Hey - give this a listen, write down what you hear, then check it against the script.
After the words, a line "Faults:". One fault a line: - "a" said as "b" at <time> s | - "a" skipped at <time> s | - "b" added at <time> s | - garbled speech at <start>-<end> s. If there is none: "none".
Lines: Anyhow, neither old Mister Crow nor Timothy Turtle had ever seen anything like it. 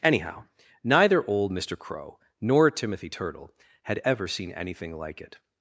Anyhow, neither old Mister Crow nor Timothy Turtle had ever seen anything like it.
Faults:
none